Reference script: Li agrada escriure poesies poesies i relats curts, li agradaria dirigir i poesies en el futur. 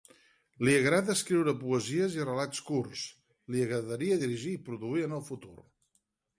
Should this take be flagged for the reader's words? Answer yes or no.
yes